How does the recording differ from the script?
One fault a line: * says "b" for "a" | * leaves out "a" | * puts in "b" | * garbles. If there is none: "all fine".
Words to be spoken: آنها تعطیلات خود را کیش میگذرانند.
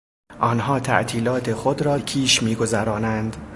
all fine